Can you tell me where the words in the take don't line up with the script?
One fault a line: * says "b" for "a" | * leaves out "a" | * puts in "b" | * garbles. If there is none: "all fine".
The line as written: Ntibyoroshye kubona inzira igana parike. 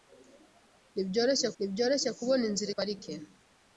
* puts in "ntibyoroshye"
* leaves out "igana"